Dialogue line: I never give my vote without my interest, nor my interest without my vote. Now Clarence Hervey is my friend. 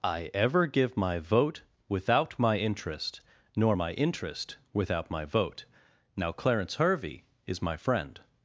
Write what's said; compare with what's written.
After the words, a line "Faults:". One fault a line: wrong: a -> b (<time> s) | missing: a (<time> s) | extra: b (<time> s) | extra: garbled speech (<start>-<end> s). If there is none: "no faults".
I ever give my vote without my interest, nor my interest without my vote. Now Clarence Hervey is my friend.
Faults:
wrong: never -> ever (0.3 s)